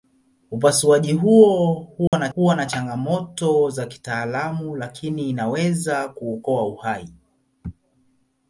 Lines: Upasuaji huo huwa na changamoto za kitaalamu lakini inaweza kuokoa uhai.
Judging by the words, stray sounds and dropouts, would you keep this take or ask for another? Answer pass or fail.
fail